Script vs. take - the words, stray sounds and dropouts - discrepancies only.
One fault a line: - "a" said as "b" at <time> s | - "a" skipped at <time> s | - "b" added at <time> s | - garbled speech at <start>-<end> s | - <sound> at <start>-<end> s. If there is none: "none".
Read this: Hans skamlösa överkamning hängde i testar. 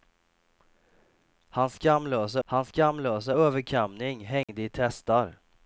- "hans skamlösa" added at 2.4 s
- dropout at 4.4-4.5 s